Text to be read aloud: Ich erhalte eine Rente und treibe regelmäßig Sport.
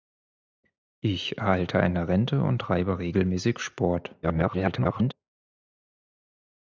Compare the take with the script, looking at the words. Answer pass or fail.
fail